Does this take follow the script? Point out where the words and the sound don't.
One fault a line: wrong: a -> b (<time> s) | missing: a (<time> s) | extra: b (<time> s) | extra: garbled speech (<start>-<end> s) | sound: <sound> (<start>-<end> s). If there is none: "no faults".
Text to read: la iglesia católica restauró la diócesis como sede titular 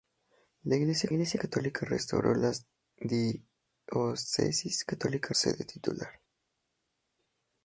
extra: iglesia (1.1 s)
wrong: como -> católica (4.9 s)